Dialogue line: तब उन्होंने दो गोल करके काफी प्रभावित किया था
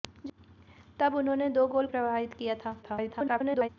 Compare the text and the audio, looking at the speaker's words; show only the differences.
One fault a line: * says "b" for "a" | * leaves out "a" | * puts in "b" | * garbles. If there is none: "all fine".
* leaves out "करके काफी"
* garbles